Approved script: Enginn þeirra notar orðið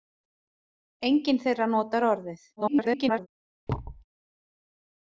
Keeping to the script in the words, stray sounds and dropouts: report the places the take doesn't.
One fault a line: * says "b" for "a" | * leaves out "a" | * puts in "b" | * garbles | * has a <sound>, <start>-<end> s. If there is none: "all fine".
* garbles
* has a thud, 3.7-4.0 s